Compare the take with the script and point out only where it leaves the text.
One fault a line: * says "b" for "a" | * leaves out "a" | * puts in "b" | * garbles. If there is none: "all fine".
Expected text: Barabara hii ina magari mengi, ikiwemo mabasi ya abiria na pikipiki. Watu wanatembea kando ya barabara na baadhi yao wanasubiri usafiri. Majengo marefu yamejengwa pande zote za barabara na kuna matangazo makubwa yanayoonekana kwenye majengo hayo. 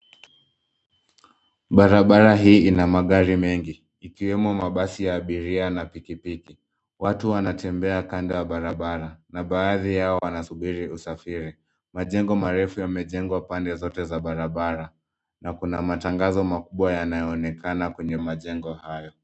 all fine